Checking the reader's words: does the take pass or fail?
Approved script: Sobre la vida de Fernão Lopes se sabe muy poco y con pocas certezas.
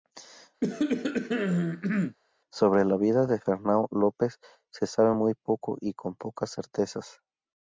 pass